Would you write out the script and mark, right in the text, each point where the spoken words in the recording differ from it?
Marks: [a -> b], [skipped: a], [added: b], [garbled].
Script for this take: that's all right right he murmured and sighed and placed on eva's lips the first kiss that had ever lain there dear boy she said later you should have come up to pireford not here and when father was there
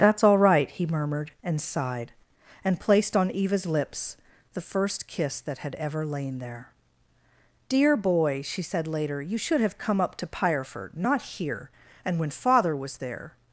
that's all right [skipped: right] he murmured and sighed and placed on eva's lips the first kiss that had ever lain there dear boy she said later you should have come up to pireford not here and when father was there